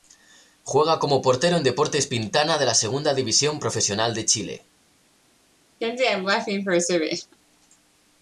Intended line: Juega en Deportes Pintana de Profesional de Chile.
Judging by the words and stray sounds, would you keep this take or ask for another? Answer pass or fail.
fail